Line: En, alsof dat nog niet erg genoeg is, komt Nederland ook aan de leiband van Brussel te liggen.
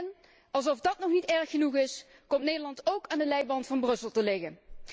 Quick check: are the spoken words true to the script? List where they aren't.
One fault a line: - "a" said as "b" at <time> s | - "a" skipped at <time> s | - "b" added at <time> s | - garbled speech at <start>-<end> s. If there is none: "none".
none